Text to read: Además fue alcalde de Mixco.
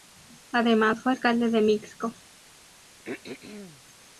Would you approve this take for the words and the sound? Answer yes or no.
no